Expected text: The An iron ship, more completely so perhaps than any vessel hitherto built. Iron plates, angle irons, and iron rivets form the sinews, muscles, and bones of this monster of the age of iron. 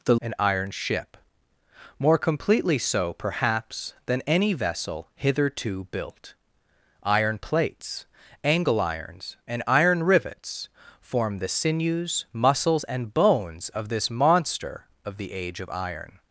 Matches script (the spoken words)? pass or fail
pass